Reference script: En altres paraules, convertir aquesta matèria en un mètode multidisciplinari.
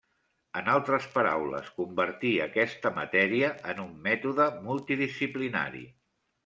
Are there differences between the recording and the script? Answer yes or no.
no